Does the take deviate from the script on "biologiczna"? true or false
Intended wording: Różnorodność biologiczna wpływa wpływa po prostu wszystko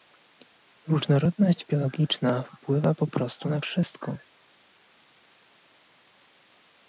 false